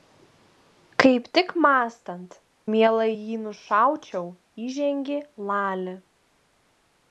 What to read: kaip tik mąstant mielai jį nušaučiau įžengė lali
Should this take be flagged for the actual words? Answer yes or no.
no